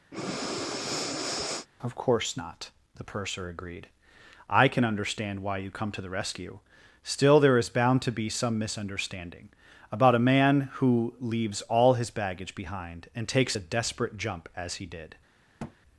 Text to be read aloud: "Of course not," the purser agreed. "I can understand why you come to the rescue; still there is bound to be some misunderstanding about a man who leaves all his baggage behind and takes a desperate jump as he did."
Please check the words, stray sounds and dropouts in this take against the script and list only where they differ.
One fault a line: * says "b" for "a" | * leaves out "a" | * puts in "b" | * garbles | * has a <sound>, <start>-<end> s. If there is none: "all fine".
* has a breath, 0.1-1.7 s
* has a thud, 15.6-15.8 s